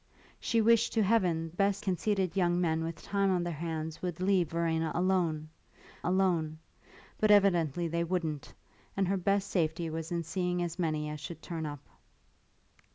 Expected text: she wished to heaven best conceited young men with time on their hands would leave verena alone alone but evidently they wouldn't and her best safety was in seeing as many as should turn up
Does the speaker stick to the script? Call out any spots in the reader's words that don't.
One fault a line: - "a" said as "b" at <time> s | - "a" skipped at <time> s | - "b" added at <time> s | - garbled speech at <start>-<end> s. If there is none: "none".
none